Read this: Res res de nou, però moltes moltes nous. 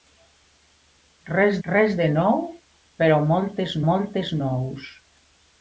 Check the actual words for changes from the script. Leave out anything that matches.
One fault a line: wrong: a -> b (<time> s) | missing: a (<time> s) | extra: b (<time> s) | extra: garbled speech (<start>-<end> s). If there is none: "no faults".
no faults